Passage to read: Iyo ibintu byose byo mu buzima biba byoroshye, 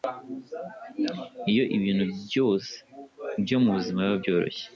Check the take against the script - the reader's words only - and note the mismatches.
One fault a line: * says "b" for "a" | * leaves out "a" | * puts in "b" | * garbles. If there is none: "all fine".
all fine